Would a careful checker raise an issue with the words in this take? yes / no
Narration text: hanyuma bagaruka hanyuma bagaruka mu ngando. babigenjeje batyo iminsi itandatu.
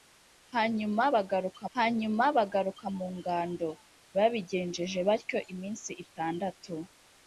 no